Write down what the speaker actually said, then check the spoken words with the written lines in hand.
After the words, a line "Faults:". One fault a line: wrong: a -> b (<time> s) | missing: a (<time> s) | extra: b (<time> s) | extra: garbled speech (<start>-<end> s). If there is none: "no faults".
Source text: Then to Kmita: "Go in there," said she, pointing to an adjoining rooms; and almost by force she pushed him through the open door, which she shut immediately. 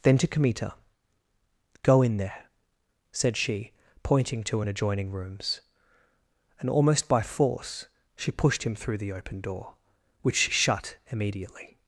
Then to Kmita: "Go in there," said she, pointing to an adjoining rooms; and almost by force she pushed him through the open door, which she shut immediately.
Faults:
no faults